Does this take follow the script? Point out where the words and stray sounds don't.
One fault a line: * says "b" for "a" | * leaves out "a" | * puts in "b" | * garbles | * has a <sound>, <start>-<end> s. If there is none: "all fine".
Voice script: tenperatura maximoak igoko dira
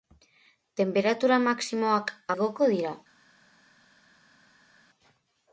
all fine